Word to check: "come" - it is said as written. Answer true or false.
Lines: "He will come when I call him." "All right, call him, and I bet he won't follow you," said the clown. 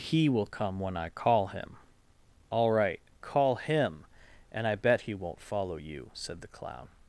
true